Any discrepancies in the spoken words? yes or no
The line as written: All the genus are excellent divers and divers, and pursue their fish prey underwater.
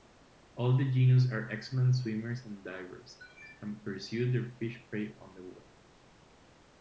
yes